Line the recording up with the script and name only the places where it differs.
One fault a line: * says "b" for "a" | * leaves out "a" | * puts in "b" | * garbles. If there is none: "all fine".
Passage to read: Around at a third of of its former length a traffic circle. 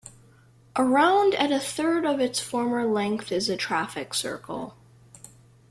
* leaves out "of"
* puts in "is"